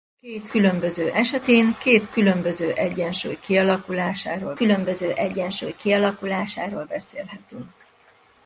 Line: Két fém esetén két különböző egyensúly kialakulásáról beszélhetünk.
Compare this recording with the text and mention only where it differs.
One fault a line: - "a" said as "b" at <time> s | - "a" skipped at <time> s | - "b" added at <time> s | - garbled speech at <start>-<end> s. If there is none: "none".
- "fém" said as "különböző" at 0.5 s
- "különböző egyensúly kialakulásáról" added at 4.5 s